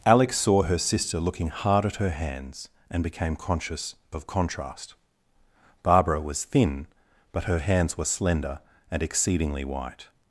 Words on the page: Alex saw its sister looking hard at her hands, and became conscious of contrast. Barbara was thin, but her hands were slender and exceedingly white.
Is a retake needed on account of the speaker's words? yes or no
yes